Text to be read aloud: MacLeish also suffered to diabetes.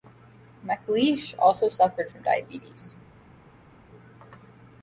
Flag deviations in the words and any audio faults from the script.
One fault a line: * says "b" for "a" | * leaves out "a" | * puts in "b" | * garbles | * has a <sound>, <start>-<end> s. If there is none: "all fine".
* says "from" for "to"